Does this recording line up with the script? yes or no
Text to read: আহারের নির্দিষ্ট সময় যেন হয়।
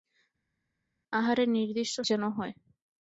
no